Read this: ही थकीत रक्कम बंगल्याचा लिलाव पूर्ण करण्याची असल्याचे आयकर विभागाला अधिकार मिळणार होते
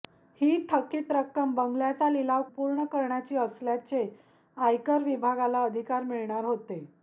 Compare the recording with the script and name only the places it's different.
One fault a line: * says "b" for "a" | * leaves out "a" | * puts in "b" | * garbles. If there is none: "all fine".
all fine